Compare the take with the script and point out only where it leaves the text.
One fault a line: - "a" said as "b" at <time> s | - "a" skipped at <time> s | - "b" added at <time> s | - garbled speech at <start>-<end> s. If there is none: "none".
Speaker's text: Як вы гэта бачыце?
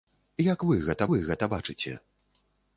- "вы гэта" added at 1.1 s